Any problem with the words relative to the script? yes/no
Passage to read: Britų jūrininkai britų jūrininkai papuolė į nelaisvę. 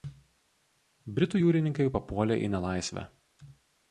yes